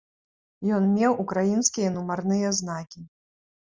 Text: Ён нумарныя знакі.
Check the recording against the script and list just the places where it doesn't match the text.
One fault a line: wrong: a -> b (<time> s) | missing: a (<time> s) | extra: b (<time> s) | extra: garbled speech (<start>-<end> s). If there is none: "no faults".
extra: меў украінскія (0.9 s)